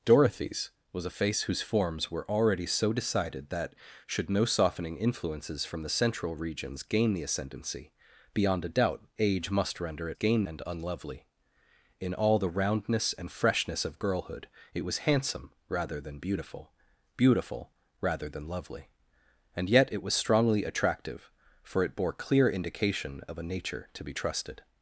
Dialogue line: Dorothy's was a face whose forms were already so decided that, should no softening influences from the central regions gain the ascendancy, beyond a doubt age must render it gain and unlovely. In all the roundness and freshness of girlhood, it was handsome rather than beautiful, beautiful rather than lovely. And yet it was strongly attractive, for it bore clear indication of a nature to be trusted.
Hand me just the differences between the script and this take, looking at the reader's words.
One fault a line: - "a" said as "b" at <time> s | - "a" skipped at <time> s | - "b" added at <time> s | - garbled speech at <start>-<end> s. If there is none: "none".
none